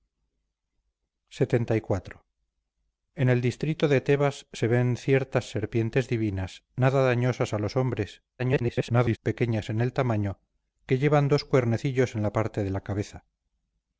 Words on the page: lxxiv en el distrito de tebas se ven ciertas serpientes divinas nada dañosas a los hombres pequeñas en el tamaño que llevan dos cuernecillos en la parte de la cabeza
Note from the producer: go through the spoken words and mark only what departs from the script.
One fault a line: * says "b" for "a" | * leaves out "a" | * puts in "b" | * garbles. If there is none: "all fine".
* garbles